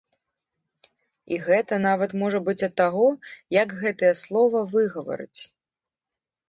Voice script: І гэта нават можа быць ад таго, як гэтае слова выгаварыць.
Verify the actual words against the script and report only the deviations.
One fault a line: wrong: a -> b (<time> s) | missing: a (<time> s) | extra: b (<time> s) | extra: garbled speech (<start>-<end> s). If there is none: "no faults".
no faults